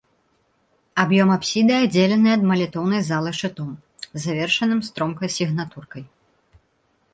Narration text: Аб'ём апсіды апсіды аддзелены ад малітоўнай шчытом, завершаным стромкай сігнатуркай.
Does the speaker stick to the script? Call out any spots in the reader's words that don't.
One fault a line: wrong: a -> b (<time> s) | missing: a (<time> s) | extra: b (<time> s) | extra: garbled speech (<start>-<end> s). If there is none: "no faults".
missing: апсіды (1.7 s)
extra: залы (3.1 s)